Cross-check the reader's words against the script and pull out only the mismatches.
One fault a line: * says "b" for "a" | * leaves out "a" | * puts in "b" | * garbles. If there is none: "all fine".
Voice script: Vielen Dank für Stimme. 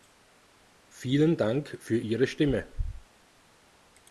* puts in "Ihre"